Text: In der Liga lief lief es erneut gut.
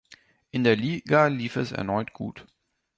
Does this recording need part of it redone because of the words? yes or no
yes